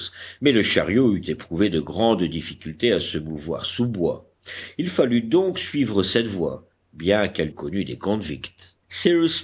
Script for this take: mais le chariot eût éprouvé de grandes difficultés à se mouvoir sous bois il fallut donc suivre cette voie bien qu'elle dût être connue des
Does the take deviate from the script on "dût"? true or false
true